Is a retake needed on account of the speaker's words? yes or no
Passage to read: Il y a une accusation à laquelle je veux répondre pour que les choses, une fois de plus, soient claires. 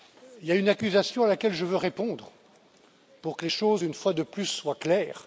no